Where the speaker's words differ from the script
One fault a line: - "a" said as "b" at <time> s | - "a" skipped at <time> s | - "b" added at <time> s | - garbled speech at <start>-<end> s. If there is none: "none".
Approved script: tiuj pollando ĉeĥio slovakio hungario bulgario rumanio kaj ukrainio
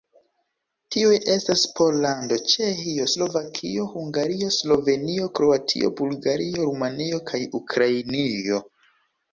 - "estas" added at 1.3 s
- "slovenio kroatio" added at 4.6 s